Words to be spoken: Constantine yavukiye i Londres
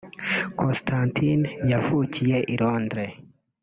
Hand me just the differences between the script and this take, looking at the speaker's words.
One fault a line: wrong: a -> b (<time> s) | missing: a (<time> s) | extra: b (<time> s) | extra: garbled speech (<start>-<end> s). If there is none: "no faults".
no faults